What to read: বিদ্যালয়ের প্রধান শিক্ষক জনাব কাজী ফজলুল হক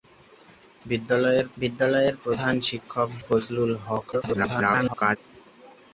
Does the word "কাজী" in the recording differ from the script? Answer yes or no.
yes